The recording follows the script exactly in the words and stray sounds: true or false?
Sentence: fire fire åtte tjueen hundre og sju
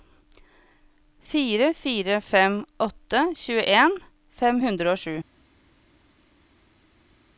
false